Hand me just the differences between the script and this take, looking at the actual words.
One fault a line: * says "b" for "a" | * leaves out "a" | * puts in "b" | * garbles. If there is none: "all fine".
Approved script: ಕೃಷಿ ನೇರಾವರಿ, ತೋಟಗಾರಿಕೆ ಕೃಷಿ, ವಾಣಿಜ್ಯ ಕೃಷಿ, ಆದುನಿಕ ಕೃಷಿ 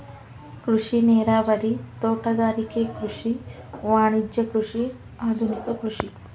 all fine